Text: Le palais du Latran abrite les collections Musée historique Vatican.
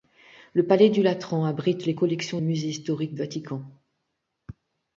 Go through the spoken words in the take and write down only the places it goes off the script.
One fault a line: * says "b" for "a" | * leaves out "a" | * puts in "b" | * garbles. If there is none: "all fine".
all fine